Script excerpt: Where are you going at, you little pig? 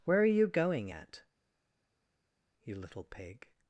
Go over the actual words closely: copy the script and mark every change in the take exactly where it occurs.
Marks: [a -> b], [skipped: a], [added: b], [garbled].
Where are you going at, you little pig?